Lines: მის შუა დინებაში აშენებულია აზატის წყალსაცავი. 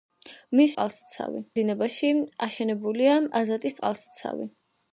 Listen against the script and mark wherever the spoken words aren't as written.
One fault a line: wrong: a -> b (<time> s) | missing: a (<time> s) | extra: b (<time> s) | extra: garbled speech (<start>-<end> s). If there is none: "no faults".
wrong: შუა -> წყალსაცავი (0.7 s)